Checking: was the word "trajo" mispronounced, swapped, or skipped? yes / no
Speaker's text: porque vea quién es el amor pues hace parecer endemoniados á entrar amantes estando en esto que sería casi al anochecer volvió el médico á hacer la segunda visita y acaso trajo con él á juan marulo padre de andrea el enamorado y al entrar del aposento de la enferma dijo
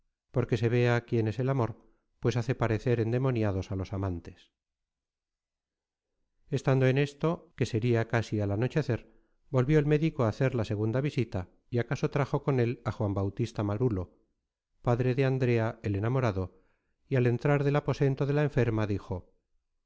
no